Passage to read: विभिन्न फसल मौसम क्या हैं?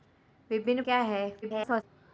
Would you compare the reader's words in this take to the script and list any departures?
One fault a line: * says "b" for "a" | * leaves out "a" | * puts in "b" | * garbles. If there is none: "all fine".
* leaves out "फसल मौसम"
* garbles